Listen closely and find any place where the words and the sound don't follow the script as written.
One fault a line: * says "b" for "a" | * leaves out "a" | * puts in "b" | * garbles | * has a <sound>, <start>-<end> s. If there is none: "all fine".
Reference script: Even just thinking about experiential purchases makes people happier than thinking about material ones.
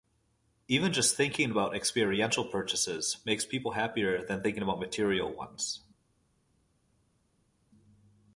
all fine